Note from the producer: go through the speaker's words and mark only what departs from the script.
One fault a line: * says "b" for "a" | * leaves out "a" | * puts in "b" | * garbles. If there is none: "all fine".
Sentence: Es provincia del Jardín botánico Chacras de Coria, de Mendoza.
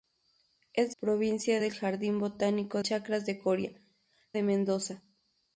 all fine